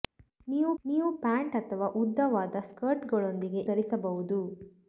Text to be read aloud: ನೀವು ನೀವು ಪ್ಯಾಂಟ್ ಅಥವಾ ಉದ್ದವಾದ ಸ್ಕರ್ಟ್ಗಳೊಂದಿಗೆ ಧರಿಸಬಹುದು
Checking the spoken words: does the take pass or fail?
pass